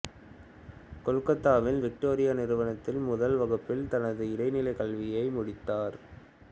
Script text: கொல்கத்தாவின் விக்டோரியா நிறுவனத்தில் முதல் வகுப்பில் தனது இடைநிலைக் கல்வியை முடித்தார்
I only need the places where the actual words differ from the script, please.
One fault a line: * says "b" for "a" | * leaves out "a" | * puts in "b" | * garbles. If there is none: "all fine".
all fine